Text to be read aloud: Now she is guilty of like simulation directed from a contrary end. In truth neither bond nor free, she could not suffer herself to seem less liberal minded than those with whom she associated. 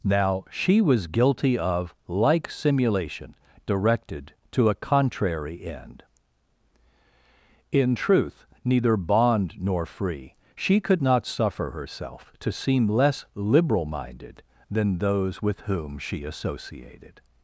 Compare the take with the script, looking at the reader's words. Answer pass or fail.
fail